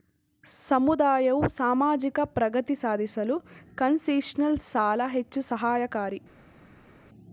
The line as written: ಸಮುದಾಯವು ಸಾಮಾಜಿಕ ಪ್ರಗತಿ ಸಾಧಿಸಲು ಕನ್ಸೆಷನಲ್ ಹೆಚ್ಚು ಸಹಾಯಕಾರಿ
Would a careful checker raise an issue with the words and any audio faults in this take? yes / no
yes